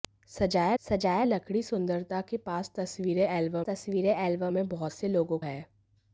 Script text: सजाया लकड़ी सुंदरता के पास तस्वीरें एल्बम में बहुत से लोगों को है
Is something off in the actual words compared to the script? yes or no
yes